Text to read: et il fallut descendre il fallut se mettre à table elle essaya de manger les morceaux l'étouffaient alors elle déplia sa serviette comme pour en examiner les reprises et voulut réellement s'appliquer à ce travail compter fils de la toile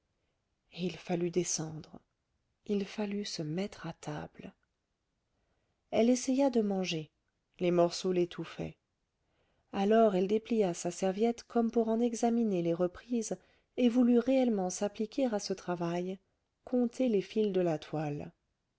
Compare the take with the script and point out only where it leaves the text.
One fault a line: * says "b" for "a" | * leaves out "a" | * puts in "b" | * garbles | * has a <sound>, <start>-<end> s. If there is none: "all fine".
* puts in "les"